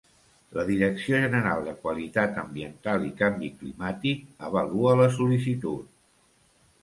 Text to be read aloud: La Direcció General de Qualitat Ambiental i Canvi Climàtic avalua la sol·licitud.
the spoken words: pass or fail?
pass